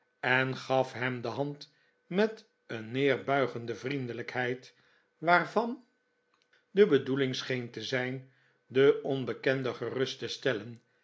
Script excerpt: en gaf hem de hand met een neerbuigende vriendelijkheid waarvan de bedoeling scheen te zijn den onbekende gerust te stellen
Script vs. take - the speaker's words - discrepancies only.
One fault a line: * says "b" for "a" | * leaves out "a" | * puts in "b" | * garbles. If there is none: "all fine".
all fine